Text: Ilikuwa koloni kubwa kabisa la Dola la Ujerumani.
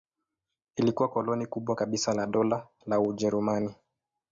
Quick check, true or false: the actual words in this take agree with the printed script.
true